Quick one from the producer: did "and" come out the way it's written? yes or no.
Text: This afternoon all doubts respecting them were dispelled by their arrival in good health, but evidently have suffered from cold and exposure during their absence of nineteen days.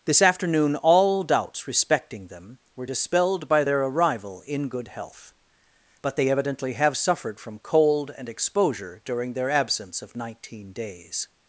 yes